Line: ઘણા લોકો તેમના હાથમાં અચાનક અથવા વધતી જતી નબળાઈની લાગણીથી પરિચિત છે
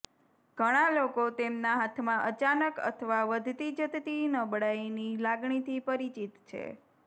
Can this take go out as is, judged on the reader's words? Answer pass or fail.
pass